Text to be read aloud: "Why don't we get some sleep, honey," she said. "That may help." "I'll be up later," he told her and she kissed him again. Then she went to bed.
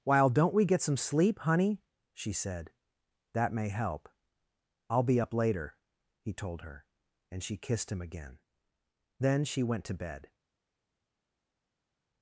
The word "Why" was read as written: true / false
false